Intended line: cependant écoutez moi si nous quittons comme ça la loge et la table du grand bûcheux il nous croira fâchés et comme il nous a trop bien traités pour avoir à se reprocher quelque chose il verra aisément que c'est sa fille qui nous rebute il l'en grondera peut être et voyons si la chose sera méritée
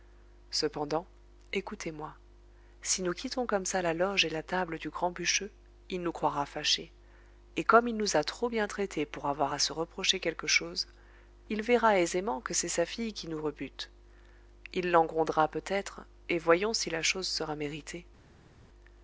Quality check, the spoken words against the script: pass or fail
pass